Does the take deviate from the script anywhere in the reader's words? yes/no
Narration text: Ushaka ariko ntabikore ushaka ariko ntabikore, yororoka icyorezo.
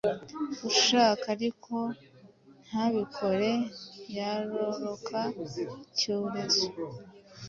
yes